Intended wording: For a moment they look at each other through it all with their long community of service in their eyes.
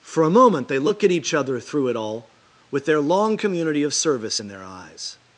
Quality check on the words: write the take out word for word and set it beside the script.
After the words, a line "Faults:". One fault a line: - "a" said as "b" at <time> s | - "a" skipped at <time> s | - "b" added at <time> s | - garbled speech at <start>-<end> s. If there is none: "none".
For a moment they look at each other through it all with their long community of service in their eyes.
Faults:
none